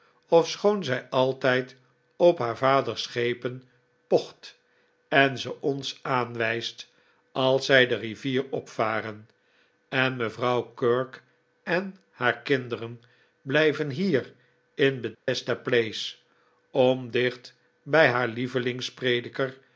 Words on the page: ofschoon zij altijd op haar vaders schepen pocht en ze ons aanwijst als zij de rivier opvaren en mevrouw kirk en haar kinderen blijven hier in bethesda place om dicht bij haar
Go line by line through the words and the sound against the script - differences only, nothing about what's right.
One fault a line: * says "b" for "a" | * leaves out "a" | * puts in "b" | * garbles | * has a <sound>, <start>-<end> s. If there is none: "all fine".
* has a dropout, 15.1-15.3 s